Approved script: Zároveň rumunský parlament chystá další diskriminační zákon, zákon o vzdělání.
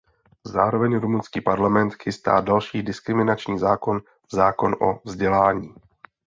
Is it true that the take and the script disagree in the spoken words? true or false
false